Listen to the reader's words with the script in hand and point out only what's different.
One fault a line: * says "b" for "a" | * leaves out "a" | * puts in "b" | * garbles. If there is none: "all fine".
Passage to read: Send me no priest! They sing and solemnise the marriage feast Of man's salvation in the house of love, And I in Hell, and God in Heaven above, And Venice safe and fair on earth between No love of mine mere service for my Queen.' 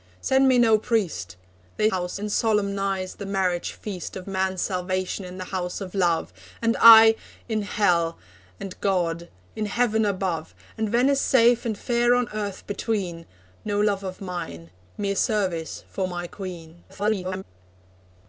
* says "house" for "sing"
* garbles